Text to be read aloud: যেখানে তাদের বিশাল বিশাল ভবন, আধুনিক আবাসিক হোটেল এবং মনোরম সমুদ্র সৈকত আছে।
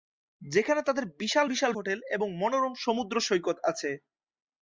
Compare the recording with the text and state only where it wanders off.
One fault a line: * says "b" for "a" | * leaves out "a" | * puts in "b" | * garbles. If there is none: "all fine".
* leaves out "ভবন আধুনিক আবাসিক"